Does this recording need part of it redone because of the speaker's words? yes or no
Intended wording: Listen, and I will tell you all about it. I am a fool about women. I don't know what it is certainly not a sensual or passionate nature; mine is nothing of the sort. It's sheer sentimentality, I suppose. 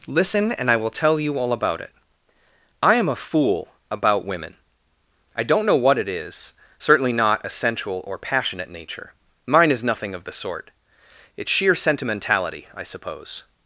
no